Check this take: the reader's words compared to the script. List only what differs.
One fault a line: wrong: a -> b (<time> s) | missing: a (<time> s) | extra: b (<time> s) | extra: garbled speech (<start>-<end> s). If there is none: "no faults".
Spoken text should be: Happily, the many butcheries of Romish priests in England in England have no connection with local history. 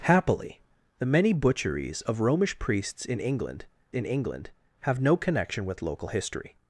no faults